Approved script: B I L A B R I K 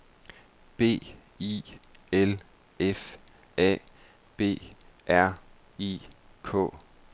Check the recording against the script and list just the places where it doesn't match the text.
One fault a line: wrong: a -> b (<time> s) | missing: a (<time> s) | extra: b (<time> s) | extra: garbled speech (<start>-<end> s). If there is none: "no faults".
extra: F (2.8 s)